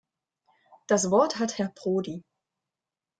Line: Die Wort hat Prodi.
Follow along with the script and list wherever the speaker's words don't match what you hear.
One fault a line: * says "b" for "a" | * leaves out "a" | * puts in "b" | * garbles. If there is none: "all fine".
* says "Das" for "Die"
* puts in "Herr"